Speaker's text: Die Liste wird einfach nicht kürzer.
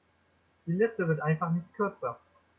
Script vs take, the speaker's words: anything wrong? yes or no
no